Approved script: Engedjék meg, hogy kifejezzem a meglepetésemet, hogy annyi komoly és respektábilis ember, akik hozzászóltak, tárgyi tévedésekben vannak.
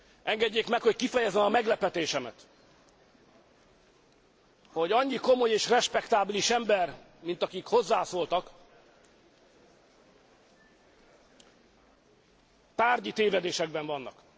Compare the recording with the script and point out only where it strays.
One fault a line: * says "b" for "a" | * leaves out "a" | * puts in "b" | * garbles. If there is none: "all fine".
* puts in "mint"